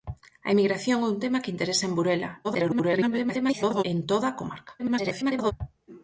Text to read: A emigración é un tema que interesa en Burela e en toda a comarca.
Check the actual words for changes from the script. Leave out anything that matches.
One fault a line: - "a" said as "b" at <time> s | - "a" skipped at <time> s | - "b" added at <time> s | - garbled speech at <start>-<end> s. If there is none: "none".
- garbled speech at 2.4-3.8 s
- garbled speech at 4.8-5.5 s